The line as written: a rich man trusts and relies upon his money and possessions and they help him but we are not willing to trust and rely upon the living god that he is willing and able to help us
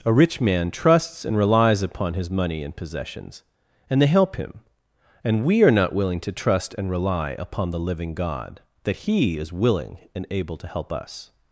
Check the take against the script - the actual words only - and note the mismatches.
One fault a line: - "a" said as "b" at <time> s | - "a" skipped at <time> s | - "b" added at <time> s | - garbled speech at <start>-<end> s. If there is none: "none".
- "but" said as "and" at 5.2 s